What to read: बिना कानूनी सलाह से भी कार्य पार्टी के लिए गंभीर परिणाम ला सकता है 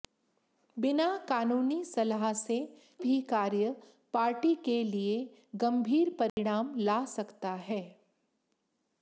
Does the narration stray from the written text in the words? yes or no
no